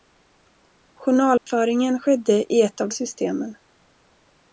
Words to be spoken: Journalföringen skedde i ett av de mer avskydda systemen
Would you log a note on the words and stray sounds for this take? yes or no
yes